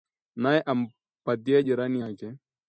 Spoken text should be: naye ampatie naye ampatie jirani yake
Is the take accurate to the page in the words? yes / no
no